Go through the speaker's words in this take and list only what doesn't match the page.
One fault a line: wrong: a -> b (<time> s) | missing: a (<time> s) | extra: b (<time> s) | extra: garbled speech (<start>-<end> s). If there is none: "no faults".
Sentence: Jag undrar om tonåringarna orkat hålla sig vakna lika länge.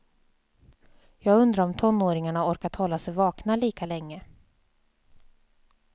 no faults